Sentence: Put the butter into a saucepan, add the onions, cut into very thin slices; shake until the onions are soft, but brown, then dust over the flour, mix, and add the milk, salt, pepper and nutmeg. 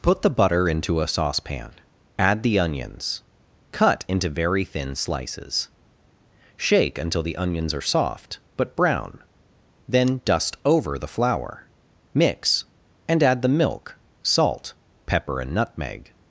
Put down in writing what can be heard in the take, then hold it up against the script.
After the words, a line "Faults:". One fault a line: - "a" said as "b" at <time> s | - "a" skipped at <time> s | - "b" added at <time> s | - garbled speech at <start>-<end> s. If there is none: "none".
Put the butter into a saucepan, add the onions, cut into very thin slices; shake until the onions are soft, but brown, then dust over the flour, mix, and add the milk, salt, pepper and nutmeg.
Faults:
none